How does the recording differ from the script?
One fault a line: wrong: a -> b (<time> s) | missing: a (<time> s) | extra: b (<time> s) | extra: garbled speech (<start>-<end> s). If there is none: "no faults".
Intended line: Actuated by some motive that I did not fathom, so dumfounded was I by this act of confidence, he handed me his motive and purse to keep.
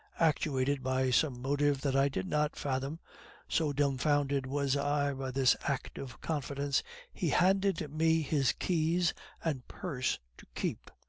wrong: motive -> keys (8.5 s)